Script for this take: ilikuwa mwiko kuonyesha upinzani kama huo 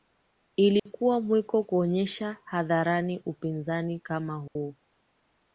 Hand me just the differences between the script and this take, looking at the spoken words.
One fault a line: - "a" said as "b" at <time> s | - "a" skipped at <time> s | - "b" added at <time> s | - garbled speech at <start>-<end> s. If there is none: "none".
- "hadharani" added at 2.4 s